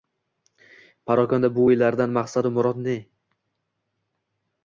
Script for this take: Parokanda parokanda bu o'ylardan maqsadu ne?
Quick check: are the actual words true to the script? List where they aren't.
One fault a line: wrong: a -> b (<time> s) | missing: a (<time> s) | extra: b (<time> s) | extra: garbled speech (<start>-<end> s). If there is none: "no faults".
missing: parokanda (1.5 s)
extra: murod (2.6 s)